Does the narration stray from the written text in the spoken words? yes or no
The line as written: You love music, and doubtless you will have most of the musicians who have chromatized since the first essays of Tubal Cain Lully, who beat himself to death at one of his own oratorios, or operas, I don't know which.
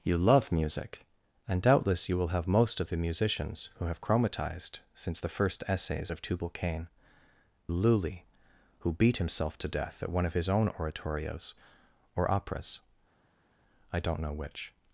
no